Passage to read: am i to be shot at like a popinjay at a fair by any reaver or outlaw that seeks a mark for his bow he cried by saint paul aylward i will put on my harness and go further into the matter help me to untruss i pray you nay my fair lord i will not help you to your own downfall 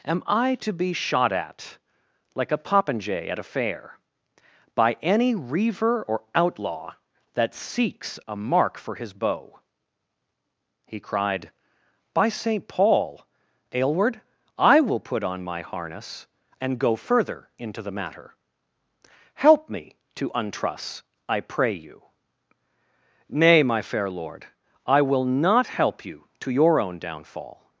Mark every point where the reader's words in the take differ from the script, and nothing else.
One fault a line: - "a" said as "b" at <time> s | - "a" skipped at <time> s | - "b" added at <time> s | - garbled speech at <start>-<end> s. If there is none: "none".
none